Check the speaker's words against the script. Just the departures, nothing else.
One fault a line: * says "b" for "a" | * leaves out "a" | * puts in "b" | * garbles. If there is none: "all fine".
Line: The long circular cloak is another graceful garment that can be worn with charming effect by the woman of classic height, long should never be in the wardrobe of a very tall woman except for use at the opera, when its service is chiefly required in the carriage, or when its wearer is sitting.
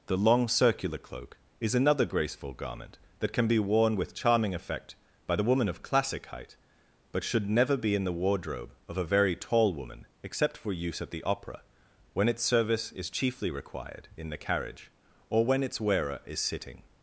* says "but" for "long"